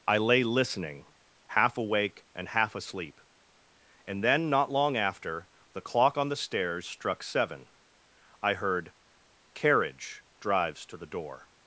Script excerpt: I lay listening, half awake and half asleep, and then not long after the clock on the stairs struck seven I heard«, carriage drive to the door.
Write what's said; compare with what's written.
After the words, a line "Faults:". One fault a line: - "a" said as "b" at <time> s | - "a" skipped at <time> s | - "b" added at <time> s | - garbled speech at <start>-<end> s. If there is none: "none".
I lay listening, half awake and half asleep, and then not long after the clock on the stairs struck seven I heard«, carriage drives to the door.
Faults:
- "drive" said as "drives" at 10.4 s